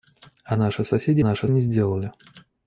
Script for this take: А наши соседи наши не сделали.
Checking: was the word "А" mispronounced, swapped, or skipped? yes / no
no